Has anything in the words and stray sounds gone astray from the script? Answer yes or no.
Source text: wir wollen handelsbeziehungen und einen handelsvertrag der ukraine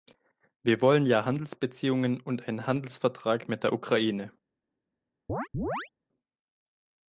yes